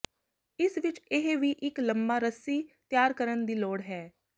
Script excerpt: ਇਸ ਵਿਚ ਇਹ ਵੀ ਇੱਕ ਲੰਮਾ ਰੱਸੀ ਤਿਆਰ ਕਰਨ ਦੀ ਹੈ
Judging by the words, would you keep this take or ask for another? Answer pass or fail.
fail